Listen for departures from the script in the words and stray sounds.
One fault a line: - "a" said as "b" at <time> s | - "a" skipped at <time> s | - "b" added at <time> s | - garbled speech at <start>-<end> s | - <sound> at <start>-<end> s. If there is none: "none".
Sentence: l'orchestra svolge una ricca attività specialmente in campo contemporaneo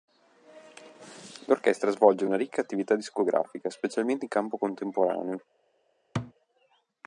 - "discografica" added at 2.9 s
- thud at 6.1-6.3 s